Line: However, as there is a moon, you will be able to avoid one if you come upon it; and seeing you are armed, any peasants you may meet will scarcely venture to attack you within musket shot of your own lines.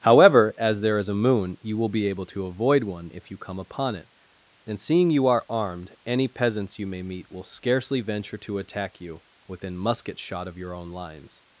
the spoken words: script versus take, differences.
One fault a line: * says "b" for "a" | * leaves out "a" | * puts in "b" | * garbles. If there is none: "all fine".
all fine